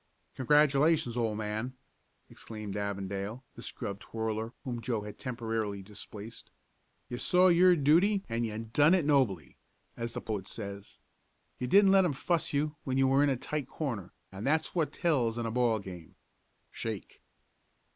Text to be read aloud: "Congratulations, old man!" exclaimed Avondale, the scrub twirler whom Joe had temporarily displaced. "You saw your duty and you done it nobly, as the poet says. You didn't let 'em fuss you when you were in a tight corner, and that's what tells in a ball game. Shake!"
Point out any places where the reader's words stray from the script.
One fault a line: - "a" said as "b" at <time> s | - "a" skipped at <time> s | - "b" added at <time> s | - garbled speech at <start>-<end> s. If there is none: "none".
none